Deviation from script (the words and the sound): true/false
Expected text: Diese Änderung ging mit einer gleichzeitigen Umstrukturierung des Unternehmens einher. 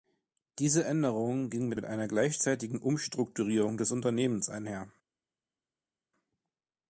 true